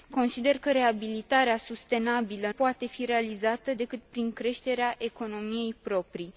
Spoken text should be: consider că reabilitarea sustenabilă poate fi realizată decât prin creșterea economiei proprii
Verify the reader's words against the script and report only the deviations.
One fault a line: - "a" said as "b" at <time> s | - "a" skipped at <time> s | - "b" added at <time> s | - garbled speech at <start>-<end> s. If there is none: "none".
none